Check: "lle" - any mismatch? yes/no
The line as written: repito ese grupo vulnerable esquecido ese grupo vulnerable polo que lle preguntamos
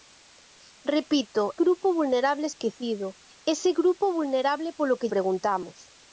yes